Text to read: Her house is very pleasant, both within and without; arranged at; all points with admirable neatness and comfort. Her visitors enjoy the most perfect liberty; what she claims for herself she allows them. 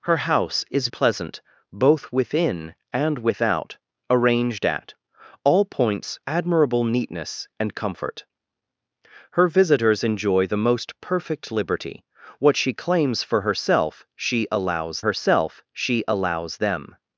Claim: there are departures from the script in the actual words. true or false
true